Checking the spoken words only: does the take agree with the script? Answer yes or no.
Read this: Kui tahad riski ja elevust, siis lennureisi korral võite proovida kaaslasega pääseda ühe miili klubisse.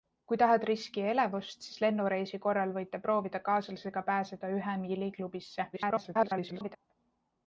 no